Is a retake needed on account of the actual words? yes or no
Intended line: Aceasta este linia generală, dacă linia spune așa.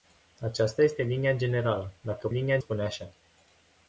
no